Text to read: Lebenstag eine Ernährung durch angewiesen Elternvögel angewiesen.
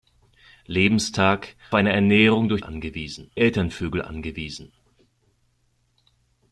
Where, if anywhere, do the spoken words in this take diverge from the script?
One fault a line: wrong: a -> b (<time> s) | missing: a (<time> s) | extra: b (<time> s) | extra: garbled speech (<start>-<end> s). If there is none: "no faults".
no faults